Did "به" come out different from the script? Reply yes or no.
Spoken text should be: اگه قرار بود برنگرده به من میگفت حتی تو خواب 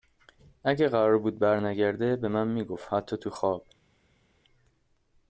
no